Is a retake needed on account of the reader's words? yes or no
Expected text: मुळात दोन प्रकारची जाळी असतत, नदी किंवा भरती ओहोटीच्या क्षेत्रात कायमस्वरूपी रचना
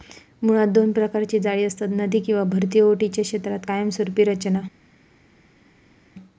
no